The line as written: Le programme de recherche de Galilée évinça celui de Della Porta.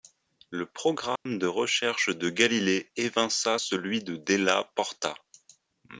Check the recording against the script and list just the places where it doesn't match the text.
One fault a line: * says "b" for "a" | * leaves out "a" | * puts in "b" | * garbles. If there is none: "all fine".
all fine